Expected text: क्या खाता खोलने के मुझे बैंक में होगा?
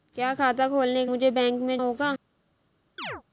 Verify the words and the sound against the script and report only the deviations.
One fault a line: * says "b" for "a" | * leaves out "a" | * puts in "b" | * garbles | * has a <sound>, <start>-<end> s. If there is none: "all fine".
* has a chirp, 3.0-3.2 s